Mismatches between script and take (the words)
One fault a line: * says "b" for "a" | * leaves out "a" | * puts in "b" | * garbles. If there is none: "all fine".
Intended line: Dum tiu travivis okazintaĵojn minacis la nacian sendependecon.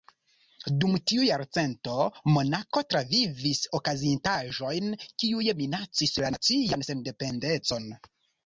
* puts in "jarcento Monako"
* puts in "kiuj"